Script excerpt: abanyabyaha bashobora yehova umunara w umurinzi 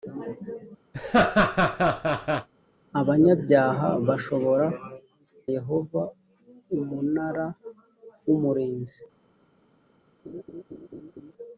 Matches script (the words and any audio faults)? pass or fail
fail